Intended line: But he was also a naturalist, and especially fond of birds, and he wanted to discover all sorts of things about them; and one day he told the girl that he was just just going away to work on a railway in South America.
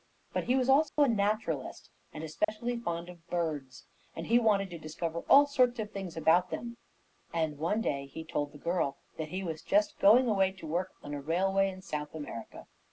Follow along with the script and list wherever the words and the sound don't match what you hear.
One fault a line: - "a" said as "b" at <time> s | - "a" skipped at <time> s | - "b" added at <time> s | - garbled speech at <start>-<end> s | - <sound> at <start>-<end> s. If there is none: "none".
- dropout at 0.9-1.0 s
- dropout at 2.4-2.5 s
- "just" skipped at 10.0 s